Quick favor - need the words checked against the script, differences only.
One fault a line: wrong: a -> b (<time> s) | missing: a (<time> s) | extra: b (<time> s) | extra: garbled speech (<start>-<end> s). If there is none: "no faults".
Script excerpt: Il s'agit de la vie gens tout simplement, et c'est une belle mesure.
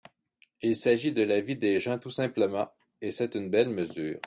extra: des (1.6 s)